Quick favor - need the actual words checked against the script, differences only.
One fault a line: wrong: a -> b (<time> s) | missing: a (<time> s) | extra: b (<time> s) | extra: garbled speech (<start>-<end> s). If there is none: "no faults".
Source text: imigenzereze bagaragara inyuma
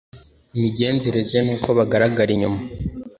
extra: n'uko (1.4 s)